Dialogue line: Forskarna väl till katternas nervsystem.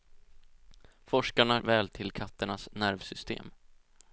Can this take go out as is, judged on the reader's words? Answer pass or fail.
pass